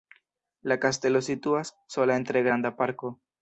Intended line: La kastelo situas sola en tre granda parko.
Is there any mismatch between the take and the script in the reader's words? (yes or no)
no